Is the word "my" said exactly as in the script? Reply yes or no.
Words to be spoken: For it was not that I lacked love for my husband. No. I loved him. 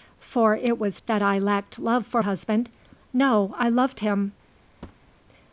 no